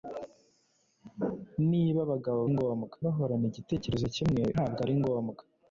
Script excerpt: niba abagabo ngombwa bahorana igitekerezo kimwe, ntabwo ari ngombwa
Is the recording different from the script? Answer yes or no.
no